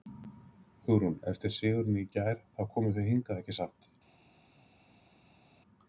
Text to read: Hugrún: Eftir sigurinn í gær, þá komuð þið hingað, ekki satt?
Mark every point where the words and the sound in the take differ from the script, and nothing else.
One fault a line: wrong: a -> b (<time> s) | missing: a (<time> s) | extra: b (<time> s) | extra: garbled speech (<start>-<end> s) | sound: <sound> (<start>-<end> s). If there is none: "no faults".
no faults